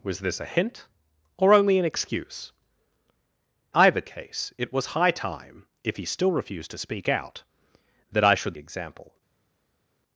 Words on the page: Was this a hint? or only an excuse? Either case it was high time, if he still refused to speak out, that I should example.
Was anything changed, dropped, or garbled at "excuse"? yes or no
no